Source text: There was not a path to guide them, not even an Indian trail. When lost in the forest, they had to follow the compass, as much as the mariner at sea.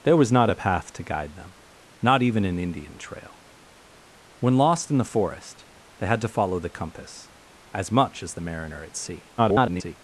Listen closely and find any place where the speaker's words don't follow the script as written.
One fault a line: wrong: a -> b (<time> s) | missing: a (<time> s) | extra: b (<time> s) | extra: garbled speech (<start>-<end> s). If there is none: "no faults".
extra: garbled speech (9.4-10.0 s)